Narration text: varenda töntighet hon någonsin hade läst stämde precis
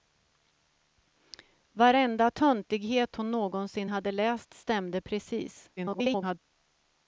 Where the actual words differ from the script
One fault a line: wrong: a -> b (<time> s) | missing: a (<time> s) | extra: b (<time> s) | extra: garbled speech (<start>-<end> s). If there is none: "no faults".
extra: garbled speech (5.8-6.4 s)